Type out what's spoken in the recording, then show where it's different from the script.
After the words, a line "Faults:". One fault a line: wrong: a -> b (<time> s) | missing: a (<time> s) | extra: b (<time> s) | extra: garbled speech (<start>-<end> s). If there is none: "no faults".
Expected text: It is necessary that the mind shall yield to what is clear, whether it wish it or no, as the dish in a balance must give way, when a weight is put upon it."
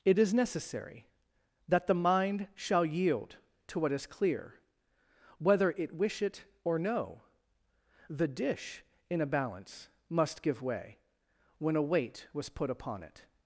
It is necessary that the mind shall yield to what is clear, whether it wish it or no, the dish in a balance must give way, when a weight was put upon it."
Faults:
missing: as (7.2 s)
wrong: is -> was (12.3 s)